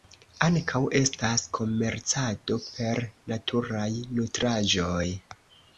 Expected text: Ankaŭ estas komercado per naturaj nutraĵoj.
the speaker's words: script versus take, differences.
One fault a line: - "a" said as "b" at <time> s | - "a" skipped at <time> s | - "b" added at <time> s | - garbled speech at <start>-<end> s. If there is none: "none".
none